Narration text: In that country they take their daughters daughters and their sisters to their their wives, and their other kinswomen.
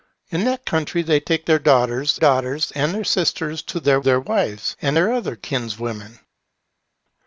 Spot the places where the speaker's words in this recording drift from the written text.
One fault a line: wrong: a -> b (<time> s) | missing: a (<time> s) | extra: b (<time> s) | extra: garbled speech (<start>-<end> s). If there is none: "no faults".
no faults